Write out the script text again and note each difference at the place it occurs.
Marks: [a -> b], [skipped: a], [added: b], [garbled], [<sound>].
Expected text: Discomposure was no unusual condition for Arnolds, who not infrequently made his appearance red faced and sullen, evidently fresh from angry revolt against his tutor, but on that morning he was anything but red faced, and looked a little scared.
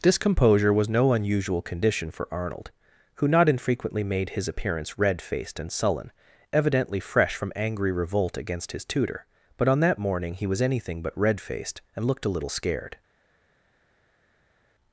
Discomposure was no unusual condition for [Arnolds, -> Arnold] who not infrequently made his appearance red faced and sullen, evidently fresh from angry revolt against his tutor, but on that morning he was anything but red faced, and looked a little scared.